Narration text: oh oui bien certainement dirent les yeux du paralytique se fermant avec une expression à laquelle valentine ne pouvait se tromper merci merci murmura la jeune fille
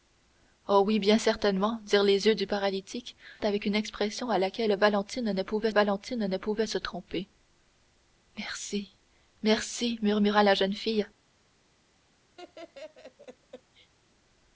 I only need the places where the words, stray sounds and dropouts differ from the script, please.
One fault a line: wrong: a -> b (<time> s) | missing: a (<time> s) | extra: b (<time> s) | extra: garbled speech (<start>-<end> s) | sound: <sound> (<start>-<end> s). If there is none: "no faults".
missing: se fermant (3.2 s)
extra: valentine ne pouvait (5.7 s)
sound: laugh (12.4-13.9 s)